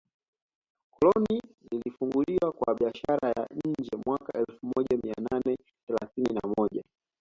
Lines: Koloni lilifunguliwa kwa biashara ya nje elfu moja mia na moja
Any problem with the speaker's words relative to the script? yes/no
yes